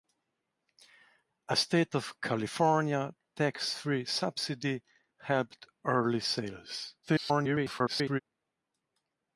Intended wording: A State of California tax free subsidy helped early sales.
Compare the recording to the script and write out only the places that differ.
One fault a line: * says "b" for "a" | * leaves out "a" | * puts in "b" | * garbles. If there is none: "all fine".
* garbles